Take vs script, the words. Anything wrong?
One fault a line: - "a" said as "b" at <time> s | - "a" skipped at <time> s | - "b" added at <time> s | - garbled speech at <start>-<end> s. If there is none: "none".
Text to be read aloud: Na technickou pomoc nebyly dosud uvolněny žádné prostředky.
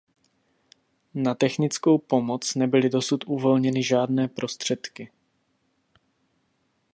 none